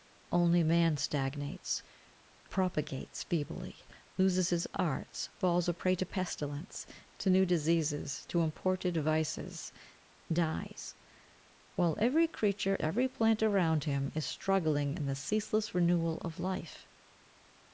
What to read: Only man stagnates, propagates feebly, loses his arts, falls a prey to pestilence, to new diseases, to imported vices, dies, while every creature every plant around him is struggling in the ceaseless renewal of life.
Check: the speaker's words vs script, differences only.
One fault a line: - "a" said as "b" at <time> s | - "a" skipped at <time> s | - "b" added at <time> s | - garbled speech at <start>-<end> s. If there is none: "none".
none